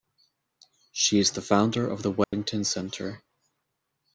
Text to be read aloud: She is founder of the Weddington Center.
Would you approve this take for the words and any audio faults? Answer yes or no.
no